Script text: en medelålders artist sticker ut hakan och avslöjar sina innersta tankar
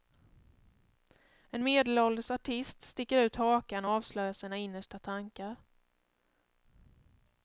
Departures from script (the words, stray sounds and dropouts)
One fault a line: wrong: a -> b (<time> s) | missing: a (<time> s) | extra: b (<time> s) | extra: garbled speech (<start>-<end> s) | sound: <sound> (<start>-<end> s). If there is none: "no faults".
no faults